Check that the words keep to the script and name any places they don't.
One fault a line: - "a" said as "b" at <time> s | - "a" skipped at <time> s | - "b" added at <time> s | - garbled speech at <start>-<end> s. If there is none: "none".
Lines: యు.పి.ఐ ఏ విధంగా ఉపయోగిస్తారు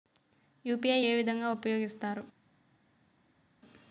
none